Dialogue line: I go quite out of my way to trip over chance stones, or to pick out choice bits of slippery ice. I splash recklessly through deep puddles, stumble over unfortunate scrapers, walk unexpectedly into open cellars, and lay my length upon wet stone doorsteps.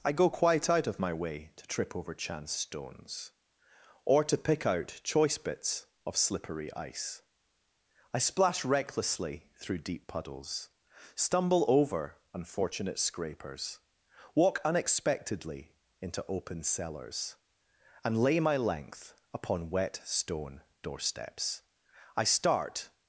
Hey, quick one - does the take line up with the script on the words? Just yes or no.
no